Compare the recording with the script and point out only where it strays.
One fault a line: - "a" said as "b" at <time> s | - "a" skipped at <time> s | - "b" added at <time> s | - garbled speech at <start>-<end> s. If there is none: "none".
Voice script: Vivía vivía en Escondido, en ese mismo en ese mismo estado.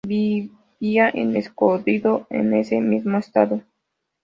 - "vivía" skipped at 1.1 s
- "en ese mismo" skipped at 3.2 s